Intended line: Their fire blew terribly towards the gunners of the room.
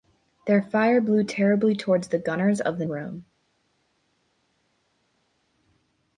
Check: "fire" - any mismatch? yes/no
no